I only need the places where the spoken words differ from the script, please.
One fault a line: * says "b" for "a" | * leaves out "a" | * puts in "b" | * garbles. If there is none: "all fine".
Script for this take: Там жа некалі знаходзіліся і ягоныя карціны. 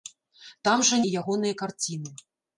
* leaves out "некалі знаходзіліся"